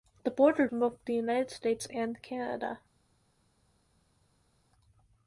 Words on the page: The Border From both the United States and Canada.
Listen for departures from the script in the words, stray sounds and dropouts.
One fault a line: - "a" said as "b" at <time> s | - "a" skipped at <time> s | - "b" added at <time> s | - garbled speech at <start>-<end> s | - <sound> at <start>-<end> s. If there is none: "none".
none